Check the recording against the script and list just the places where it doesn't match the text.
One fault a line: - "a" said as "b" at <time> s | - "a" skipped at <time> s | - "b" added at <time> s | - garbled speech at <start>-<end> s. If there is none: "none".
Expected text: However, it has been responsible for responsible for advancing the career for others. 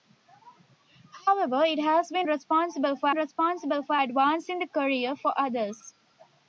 none